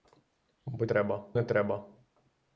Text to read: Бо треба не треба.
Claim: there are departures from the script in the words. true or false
false